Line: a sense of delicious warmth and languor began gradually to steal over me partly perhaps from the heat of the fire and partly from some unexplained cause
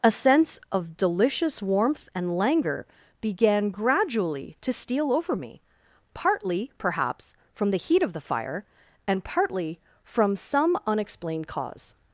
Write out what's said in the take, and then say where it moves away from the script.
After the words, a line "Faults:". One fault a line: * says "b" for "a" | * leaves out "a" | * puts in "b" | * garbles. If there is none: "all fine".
a sense of delicious warmth and languor began gradually to steal over me partly perhaps from the heat of the fire and partly from some unexplained cause
Faults:
all fine